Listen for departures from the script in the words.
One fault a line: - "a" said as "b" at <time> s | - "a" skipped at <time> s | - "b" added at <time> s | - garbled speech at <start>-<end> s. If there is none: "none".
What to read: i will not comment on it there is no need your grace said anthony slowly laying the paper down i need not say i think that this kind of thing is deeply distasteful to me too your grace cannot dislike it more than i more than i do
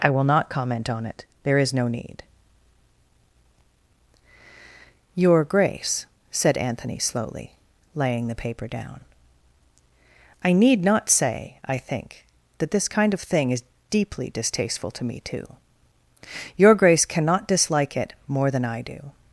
- "more than i" skipped at 18.8 s